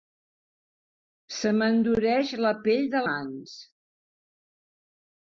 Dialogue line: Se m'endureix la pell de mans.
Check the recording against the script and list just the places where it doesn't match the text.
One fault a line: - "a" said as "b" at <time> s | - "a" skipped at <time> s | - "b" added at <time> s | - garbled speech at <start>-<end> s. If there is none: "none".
none